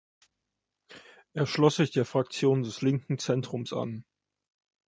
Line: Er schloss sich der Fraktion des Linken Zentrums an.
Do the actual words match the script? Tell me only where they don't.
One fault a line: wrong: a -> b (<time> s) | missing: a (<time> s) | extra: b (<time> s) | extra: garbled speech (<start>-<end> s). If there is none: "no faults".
no faults